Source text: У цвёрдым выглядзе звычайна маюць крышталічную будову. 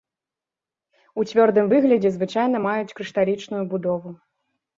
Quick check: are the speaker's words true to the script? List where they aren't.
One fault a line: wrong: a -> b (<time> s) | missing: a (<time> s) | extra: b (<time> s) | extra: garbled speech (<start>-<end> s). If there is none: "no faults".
no faults